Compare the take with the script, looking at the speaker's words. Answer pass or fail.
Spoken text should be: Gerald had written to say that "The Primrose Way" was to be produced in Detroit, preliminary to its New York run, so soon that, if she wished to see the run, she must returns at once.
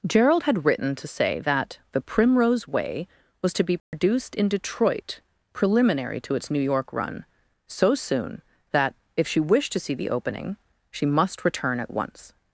fail